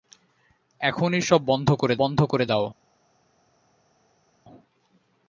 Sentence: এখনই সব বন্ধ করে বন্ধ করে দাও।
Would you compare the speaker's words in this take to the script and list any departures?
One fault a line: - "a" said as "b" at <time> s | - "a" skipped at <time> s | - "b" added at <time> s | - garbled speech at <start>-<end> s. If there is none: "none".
none